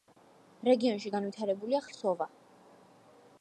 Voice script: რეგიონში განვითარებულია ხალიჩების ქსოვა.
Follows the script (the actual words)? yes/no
no